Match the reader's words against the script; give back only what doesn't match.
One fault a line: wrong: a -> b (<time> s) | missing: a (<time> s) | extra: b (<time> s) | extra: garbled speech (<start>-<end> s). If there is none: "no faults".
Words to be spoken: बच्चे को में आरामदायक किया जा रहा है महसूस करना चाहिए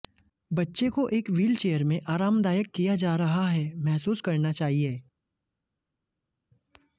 extra: एक व्हीलचेयर (1.1 s)